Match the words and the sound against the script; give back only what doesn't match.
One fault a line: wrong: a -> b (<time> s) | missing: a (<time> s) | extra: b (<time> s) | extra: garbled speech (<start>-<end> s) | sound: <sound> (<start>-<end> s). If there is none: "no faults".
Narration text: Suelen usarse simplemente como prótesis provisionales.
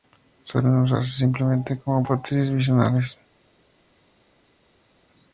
no faults